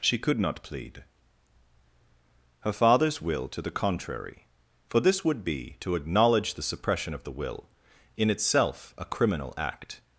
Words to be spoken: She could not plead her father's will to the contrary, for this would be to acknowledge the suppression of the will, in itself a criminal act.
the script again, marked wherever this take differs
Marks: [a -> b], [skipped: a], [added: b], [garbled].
She could not plead her father's will to the contrary, for this would be to acknowledge the suppression of the will, in itself a criminal act.